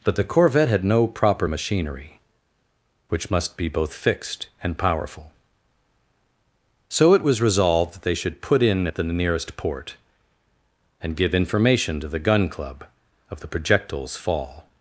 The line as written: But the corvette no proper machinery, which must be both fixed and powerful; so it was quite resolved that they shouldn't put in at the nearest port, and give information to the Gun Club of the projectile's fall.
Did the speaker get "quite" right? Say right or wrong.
wrong